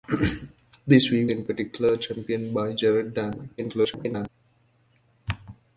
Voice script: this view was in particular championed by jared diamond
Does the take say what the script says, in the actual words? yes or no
no